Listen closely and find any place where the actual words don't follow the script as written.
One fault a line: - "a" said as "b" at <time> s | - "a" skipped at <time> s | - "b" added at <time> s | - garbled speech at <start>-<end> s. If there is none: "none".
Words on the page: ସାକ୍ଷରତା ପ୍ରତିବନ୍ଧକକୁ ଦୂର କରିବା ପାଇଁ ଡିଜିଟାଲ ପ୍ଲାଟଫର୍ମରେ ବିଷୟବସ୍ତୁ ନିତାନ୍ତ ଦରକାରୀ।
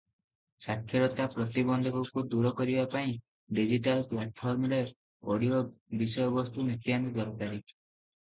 - "ଅଡିଓ" added at 5.3 s